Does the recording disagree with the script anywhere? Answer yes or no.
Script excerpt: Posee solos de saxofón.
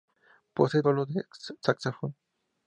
no